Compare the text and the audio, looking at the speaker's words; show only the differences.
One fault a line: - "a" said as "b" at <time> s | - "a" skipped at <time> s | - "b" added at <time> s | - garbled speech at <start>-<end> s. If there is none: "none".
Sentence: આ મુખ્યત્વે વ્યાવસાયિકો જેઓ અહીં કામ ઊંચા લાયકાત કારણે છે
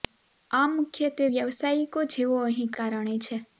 - "કામ ઊંચા લાયકાત" skipped at 2.7 s